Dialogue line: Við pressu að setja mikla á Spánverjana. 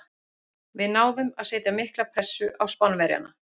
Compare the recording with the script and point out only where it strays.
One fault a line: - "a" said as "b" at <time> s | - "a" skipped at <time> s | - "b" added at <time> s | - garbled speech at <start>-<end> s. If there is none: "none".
- "pressu" said as "náðum" at 0.9 s
- "pressu" added at 2.2 s